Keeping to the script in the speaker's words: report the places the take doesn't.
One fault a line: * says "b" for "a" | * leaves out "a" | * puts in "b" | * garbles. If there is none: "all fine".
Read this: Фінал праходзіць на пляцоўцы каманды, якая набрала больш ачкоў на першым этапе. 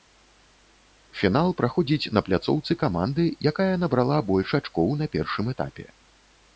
all fine